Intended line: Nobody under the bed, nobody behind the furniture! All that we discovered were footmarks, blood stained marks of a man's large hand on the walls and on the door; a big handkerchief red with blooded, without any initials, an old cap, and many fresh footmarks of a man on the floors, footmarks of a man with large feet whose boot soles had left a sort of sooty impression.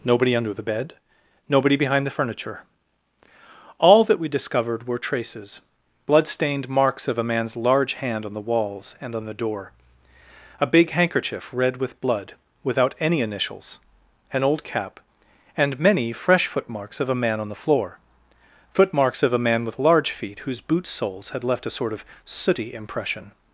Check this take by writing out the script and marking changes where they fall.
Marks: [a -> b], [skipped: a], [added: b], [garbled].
Nobody under the bed, nobody behind the furniture! All that we discovered were [footmarks, -> traces] blood stained marks of a man's large hand on the walls and on the door; a big handkerchief red with [blooded, -> blood] without any initials, an old cap, and many fresh footmarks of a man on the [floors, -> floor] footmarks of a man with large feet whose boot soles had left a sort of sooty impression.